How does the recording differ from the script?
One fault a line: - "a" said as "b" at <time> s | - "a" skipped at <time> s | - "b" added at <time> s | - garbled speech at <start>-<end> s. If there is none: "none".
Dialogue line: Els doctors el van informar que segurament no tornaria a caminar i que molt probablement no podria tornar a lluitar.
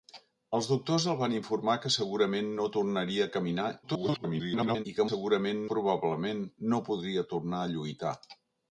- garbled speech at 3.8-4.9 s
- "molt" said as "segurament" at 5.1 s